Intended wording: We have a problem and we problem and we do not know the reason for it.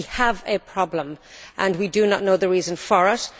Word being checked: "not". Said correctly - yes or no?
yes